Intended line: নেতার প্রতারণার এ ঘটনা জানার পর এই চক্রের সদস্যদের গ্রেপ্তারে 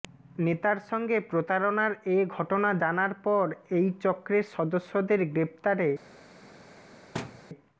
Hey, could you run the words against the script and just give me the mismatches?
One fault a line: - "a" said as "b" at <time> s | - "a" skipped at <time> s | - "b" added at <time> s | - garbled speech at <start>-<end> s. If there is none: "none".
- "সঙ্গে" added at 0.9 s